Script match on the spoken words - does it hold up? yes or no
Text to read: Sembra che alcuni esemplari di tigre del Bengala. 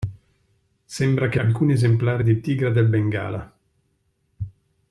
yes